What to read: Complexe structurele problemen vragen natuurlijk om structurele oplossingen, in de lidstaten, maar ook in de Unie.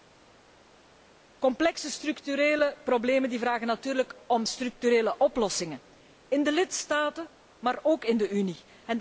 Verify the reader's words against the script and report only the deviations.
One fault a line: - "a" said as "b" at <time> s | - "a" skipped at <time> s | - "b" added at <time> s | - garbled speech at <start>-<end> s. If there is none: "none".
none